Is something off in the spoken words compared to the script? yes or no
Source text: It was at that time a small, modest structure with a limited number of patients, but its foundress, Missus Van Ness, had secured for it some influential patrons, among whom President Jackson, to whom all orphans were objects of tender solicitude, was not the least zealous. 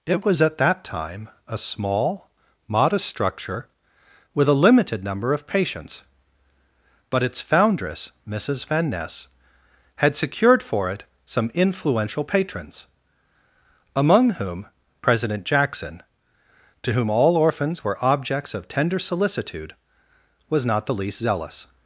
no